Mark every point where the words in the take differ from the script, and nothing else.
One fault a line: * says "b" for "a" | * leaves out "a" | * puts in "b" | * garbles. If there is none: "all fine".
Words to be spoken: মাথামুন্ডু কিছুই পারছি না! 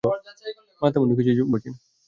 all fine